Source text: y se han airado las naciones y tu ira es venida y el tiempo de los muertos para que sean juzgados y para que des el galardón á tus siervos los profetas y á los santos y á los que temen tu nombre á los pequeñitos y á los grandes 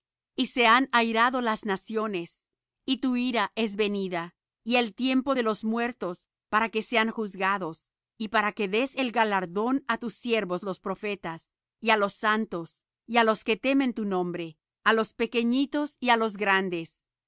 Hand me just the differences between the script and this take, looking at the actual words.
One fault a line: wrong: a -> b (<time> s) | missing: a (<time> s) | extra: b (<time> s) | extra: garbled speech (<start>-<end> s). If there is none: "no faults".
no faults